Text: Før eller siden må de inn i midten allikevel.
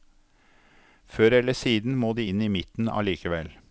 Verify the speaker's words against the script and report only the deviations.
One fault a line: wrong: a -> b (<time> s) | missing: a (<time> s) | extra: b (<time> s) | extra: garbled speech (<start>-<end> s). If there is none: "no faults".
no faults